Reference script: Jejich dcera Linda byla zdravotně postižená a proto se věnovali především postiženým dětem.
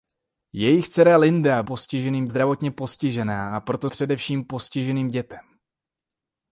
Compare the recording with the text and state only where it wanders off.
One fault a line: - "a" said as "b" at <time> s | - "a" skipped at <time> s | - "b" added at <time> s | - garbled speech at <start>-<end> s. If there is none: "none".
- "byla" said as "postiženým" at 1.6 s
- "se věnovali" skipped at 3.9 s